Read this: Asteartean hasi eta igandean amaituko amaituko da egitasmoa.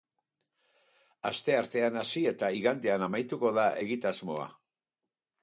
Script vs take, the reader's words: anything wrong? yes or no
yes